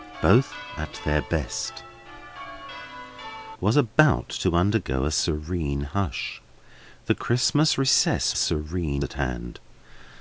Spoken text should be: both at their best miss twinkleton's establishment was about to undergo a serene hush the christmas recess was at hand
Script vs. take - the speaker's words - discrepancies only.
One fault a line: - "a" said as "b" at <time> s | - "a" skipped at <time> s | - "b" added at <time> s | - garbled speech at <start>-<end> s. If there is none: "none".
- "miss twinkleton's establishment" skipped at 1.8 s
- "was" said as "serene" at 8.3 s